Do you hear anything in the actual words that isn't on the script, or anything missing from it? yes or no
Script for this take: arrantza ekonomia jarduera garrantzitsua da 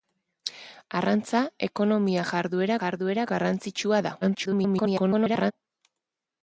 yes